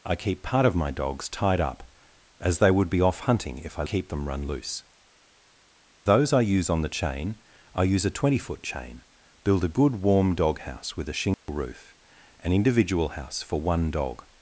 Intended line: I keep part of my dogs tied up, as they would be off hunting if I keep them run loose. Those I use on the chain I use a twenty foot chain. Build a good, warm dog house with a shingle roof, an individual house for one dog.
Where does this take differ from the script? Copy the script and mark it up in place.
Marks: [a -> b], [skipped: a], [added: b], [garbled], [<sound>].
I keep part of my dogs tied up, as they would be off hunting if I keep them run loose. Those I use on the chain I use a twenty foot chain. Build a good, warm dog house with a shingle [dropout] roof, an individual house for one dog.